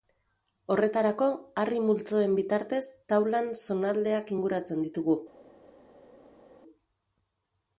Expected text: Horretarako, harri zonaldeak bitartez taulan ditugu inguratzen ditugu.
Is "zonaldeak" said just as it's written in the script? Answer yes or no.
no